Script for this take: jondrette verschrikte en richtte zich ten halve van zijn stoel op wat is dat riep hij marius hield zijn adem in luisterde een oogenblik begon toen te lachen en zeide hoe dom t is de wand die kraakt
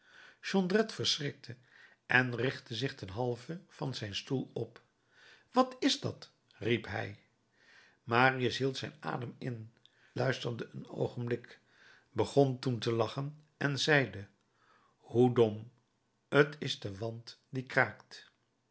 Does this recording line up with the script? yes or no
yes